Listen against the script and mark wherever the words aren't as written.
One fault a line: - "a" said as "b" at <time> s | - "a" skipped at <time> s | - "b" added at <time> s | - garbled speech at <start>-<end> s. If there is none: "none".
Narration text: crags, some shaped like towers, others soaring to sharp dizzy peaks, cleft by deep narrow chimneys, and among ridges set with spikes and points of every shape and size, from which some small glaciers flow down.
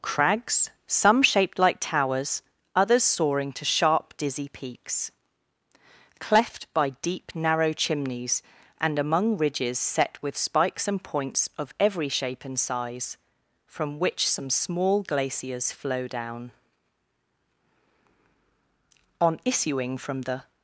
- "On issuing from the" added at 19.2 s